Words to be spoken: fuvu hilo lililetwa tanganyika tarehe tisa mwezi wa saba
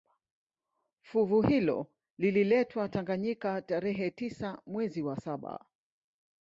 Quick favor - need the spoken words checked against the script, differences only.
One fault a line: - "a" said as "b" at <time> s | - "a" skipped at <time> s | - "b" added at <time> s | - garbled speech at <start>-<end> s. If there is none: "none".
none